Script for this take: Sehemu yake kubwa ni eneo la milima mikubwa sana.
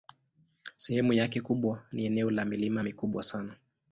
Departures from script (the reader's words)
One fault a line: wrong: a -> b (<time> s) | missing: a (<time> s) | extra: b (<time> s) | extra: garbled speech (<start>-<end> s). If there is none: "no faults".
no faults